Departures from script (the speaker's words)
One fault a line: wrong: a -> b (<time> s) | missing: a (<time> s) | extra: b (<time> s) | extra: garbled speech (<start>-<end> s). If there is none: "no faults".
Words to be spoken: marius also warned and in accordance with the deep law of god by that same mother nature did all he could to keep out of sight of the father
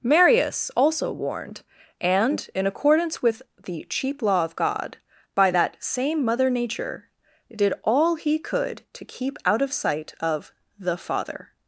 wrong: deep -> cheap (3.9 s)